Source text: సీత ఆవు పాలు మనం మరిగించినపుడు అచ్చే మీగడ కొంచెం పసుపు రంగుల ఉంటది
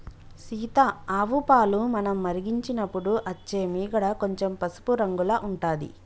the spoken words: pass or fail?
pass